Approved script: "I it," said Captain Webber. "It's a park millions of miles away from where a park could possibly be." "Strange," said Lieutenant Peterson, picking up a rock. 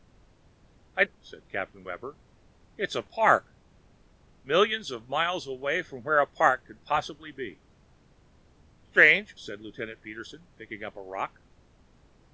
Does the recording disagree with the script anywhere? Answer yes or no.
no